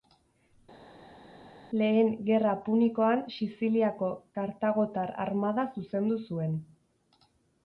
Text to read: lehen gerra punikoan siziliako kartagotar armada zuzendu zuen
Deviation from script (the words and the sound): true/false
false